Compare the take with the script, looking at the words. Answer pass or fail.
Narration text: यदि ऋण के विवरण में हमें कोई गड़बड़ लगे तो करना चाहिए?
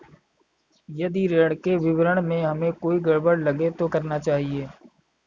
pass